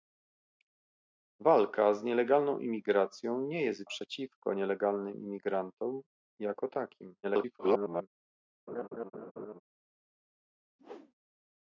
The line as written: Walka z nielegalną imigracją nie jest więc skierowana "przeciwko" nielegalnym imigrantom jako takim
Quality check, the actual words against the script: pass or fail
fail